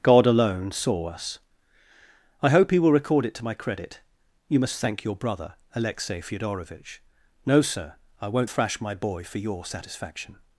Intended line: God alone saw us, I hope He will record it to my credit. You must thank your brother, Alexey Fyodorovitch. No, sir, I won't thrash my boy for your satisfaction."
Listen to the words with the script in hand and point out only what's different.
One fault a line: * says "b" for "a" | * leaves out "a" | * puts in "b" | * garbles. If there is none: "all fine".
all fine